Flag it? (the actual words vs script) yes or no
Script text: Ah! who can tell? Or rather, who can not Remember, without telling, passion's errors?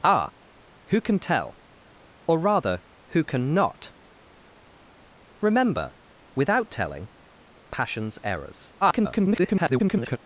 yes